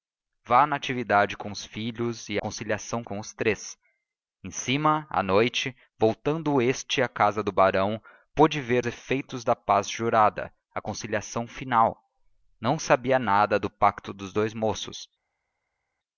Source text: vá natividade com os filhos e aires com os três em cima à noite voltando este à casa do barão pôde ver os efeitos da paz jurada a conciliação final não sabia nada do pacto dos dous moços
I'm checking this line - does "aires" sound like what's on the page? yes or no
no